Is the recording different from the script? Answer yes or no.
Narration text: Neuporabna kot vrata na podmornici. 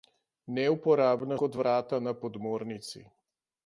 no